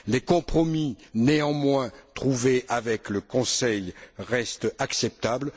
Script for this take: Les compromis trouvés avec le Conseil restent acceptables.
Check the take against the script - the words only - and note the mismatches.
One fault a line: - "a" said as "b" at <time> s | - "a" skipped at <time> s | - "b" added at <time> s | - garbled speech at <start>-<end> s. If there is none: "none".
- "néanmoins" added at 1.1 s